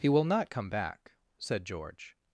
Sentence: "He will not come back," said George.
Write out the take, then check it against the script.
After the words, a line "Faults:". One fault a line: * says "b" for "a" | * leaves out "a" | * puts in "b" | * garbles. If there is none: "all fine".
"He will not come back," said George.
Faults:
all fine